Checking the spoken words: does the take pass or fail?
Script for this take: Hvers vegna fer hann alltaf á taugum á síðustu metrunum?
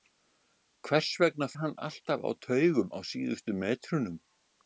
fail